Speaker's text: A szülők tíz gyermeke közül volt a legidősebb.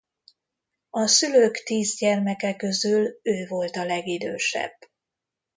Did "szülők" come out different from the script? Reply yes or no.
no